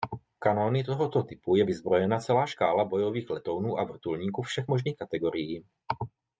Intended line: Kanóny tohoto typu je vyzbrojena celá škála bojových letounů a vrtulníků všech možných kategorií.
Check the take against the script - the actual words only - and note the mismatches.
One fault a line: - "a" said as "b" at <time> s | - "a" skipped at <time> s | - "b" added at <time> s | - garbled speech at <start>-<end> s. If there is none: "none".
none